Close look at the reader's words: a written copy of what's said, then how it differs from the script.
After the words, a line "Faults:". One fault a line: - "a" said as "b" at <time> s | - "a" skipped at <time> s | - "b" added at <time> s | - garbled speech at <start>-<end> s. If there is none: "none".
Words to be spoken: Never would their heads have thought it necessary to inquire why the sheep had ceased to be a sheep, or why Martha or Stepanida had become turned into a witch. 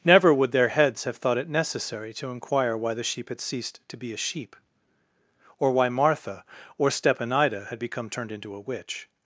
Never would their heads have thought it necessary to inquire why the sheep had ceased to be a sheep, or why Martha or Stepanida had become turned into a witch.
Faults:
none